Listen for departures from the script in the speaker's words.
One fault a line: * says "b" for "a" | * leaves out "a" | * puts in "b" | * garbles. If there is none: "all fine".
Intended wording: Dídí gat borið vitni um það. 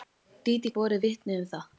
* leaves out "gat"